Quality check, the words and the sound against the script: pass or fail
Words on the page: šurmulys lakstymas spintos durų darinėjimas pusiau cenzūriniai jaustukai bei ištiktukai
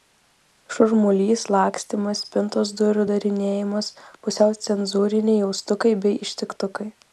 pass